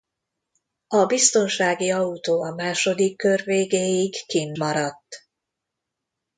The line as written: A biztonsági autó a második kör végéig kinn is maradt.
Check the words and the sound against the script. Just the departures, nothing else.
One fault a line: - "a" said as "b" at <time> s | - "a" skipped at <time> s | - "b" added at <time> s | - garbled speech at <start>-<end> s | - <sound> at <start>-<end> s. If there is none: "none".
- "is" skipped at 4.6 s